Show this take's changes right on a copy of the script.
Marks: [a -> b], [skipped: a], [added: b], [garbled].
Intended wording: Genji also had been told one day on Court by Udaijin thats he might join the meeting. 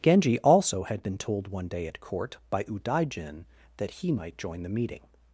Genji also had been told one day [on -> at] Court by Udaijin [thats -> that] he might join the meeting.